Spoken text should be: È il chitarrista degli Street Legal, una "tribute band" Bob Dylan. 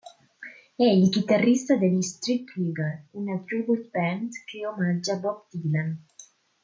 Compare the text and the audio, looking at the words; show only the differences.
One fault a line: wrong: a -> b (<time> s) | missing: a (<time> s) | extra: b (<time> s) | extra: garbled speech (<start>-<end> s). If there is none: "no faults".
extra: che omaggia (4.5 s)